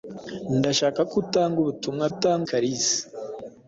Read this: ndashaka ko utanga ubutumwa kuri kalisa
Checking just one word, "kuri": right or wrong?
wrong